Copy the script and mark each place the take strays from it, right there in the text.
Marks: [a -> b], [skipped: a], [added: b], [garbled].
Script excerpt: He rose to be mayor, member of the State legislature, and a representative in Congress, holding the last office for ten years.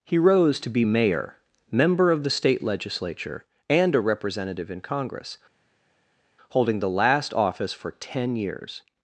He rose to be mayor, member of the State legislature, and a representative in Congress, holding the last office for ten years.